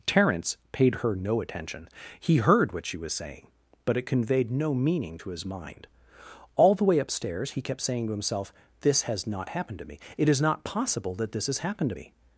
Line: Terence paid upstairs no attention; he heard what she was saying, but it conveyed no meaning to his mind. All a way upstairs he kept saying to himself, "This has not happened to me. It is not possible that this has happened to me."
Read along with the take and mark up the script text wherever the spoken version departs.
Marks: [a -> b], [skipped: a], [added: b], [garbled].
Terence paid [upstairs -> her] no attention; he heard what she was saying, but it conveyed no meaning to his mind. All [a -> the] way upstairs he kept saying to himself, "This has not happened to me. It is not possible that this has happened to me."